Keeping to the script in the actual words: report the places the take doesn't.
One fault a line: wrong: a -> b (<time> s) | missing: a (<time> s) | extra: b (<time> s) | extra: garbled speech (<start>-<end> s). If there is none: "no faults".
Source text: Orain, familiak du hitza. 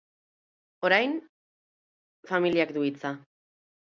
no faults